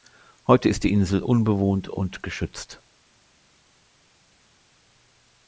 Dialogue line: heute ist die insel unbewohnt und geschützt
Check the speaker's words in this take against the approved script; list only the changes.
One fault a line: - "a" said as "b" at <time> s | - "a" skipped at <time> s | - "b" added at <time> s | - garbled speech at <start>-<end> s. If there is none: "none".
none